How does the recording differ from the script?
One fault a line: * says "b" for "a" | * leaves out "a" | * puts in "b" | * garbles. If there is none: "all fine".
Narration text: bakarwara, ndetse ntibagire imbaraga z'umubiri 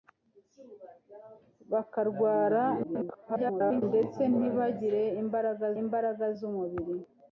* garbles
* puts in "imbaraga"